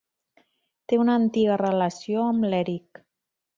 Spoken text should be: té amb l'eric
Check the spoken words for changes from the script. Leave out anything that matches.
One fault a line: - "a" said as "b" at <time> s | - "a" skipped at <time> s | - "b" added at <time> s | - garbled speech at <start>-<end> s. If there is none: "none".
- "una antiga relació" added at 1.0 s